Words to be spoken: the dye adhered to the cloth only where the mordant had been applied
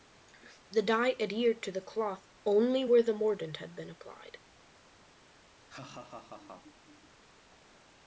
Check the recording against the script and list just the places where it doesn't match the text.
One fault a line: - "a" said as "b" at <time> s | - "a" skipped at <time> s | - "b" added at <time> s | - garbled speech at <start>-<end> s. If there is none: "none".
none